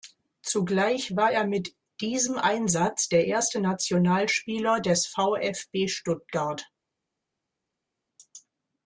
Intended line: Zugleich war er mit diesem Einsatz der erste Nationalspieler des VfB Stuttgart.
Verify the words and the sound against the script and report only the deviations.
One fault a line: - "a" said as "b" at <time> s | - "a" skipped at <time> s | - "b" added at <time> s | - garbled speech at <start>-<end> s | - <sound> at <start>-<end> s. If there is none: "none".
none